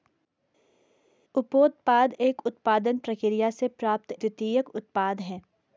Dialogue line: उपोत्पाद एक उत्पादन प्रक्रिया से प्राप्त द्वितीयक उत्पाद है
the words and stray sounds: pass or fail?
pass